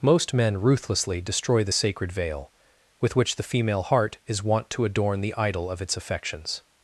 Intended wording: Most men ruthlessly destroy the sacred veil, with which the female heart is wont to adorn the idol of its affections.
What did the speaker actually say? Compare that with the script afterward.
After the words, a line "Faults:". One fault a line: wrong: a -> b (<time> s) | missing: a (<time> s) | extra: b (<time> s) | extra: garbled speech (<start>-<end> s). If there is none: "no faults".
Most men ruthlessly destroy the sacred veil, with which the female heart is wont to adorn the idol of its affections.
Faults:
no faults